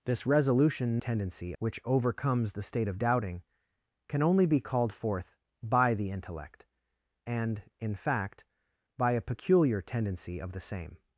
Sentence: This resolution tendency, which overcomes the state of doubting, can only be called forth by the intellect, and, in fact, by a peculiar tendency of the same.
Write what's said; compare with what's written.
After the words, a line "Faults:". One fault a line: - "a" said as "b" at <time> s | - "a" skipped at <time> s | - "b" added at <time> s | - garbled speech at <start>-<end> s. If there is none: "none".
This resolution tendency, which overcomes the state of doubting, can only be called forth by the intellect, and, in fact, by a peculiar tendency of the same.
Faults:
none